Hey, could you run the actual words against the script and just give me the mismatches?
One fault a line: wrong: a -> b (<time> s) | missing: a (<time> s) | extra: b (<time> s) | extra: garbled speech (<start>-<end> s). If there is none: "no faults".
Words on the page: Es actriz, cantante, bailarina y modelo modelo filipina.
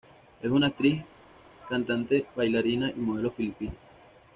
extra: una (0.5 s)
missing: modelo (3.3 s)